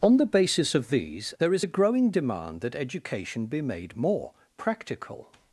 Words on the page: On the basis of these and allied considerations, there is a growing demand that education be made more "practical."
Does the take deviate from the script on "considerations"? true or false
true